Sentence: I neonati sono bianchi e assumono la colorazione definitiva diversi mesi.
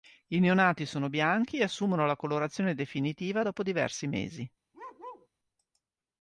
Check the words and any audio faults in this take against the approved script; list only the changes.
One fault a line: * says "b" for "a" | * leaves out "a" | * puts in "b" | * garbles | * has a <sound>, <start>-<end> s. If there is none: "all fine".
* puts in "dopo"
* has a bark, 4.7-5.3 s